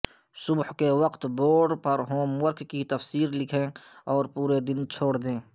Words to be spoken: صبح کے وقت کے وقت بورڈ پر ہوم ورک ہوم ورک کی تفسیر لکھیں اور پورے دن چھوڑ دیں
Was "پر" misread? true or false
false